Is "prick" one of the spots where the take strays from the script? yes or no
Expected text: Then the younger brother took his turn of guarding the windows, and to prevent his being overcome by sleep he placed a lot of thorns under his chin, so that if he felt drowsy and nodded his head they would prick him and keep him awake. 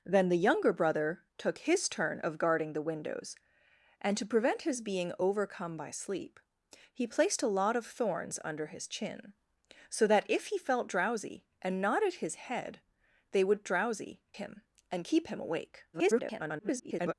yes